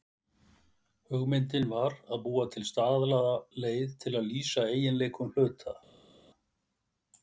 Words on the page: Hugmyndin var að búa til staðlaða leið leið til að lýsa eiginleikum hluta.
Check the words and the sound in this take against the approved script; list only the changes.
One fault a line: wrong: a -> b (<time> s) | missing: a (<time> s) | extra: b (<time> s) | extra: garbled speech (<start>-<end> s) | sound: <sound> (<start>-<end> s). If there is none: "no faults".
missing: leið (3.9 s)